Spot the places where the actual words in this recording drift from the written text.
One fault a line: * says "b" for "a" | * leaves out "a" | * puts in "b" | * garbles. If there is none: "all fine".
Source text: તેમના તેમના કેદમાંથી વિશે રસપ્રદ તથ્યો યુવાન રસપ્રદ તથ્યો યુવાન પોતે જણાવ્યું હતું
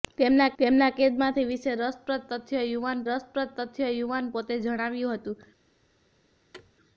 all fine